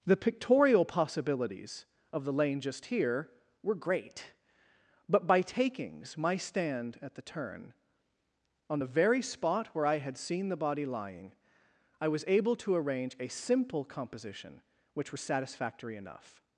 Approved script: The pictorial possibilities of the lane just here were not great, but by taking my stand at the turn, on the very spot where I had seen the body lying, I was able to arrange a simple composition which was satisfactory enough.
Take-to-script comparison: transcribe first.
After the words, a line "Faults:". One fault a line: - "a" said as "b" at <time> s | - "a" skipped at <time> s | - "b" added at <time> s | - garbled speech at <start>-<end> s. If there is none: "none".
The pictorial possibilities of the lane just here were great, but by takings my stand at the turn, on the very spot where I had seen the body lying, I was able to arrange a simple composition which was satisfactory enough.
Faults:
- "not" skipped at 3.8 s
- "taking" said as "takings" at 5.4 s